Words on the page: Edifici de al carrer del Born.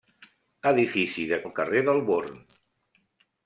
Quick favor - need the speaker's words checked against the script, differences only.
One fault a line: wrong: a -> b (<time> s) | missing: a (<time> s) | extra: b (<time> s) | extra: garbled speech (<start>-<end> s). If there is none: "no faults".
no faults